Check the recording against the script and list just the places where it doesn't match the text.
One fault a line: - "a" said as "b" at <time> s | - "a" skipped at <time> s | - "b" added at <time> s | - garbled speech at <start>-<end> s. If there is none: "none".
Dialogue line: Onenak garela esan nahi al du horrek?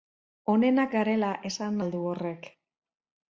- "nahi" skipped at 1.8 s